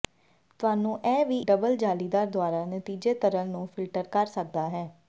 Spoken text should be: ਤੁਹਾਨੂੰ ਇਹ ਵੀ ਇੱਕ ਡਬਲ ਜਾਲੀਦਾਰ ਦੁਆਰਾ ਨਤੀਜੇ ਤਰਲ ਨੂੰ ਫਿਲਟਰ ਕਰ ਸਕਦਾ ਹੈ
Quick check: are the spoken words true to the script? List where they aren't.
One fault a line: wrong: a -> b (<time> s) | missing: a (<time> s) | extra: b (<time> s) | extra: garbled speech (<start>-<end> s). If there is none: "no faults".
missing: ਇੱਕ (1.4 s)